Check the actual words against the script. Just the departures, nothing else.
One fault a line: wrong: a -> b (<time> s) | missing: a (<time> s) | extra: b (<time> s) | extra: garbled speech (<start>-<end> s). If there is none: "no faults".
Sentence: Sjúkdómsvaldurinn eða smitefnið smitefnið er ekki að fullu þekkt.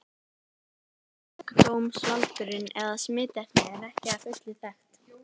missing: smitefnið (3.7 s)